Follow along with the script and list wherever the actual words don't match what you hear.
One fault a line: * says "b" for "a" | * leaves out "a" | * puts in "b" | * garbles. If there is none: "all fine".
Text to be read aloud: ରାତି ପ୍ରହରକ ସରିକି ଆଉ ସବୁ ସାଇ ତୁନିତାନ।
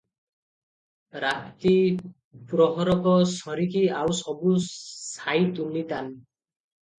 all fine